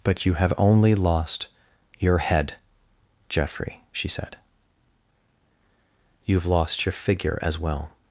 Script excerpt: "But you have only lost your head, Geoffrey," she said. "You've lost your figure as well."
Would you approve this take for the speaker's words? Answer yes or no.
yes